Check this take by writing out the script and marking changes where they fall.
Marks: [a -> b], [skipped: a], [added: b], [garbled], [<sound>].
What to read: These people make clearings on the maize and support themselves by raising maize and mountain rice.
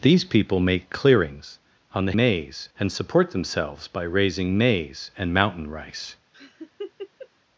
These people make clearings on the maize and support themselves by raising maize and mountain rice. [laugh]